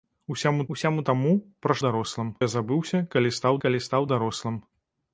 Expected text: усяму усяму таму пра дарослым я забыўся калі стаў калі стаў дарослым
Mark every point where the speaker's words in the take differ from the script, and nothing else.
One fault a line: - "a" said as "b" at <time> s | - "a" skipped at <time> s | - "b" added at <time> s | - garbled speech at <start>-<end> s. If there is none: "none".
none